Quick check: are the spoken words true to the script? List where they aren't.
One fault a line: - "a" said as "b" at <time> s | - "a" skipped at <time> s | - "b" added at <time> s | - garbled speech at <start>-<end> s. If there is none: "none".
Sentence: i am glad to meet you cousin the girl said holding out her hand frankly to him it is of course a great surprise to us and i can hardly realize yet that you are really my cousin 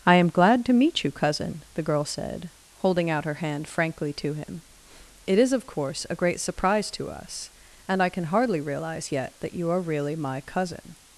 none